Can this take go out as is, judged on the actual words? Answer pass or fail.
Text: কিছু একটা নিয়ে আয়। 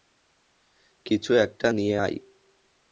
pass